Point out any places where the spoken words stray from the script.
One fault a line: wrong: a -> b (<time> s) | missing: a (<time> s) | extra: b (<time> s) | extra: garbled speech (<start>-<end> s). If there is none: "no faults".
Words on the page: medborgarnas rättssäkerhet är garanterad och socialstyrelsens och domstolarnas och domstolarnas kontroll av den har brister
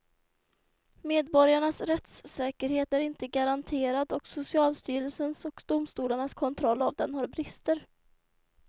extra: inte (3.0 s)
missing: och domstolarnas (6.3 s)